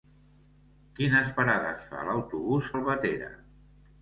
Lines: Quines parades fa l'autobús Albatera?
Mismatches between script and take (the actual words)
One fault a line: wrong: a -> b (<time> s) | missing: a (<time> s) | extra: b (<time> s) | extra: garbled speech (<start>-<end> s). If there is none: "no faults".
no faults